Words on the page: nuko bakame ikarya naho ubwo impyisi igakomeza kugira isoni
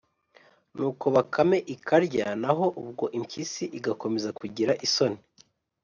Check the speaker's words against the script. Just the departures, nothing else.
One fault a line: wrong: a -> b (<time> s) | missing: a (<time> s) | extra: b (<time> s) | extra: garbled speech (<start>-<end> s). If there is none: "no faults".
no faults